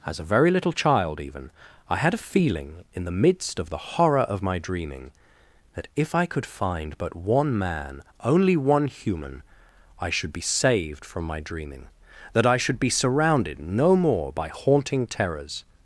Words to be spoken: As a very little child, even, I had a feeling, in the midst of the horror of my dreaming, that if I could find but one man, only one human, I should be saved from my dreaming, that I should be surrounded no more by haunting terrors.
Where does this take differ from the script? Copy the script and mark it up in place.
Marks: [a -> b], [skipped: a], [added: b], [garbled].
As a very little child, even, I had a feeling, in the midst of the horror of my dreaming, that if I could find but one man, only one human, I should be saved from my dreaming, that I should be surrounded no more by haunting terrors.